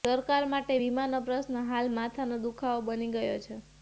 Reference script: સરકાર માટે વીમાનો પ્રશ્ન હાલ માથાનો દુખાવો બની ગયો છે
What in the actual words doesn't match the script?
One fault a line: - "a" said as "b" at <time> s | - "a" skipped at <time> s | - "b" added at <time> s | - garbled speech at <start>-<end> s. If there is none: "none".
none